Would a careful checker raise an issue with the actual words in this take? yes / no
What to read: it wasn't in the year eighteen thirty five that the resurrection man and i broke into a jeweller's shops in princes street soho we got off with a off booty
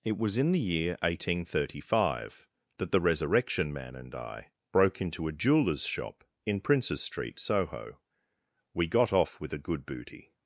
yes